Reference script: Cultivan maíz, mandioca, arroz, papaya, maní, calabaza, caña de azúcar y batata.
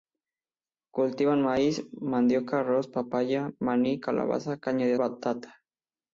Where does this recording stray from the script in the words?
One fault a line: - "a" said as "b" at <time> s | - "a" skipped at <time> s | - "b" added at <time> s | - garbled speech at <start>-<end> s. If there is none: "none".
- "azúcar y" skipped at 5.0 s